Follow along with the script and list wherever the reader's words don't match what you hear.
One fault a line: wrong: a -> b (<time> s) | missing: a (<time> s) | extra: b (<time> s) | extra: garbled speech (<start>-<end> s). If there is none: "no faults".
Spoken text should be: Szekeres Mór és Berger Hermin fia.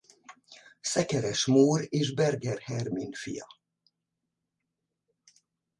no faults